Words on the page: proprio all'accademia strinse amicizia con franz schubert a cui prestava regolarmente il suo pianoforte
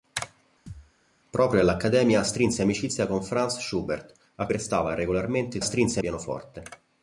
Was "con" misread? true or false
false